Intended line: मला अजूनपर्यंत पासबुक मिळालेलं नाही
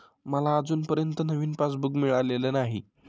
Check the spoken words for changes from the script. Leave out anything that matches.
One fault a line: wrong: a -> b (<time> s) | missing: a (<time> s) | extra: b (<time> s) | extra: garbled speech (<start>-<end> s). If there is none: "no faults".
extra: नवीन (1.2 s)